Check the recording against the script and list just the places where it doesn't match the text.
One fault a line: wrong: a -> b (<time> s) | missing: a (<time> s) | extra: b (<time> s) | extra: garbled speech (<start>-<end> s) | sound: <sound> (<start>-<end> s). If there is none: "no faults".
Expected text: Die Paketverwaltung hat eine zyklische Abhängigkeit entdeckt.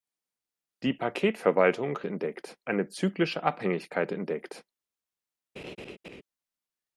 wrong: hat -> entdeckt (2.1 s)
sound: laugh (5.6-6.2 s)